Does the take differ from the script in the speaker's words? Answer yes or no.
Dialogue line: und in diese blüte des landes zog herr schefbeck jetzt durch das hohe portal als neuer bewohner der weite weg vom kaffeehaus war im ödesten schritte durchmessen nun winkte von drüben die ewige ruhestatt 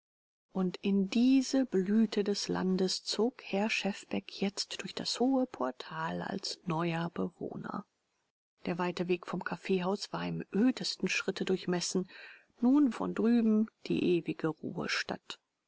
yes